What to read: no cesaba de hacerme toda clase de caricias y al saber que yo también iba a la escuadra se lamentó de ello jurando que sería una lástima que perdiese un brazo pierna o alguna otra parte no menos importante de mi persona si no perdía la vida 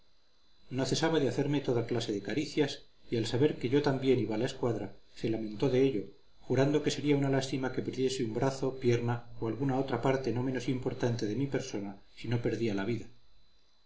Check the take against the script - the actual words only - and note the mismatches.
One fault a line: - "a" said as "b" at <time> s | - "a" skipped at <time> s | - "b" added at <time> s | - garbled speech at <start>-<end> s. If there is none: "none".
none